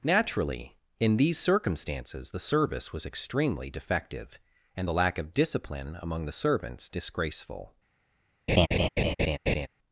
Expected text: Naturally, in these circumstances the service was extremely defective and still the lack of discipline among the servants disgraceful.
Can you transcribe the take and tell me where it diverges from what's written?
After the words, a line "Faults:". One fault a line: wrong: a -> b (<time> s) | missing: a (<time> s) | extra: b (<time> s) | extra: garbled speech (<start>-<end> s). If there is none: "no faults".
Naturally, in these circumstances the service was extremely defective and the lack of discipline among the servants disgraceful.
Faults:
missing: still (4.9 s)